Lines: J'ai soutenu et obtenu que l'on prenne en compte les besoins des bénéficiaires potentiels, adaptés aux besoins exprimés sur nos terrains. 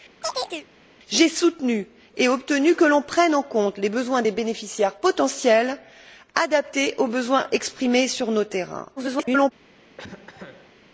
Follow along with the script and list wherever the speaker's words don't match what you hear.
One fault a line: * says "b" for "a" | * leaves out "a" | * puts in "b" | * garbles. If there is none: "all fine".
* garbles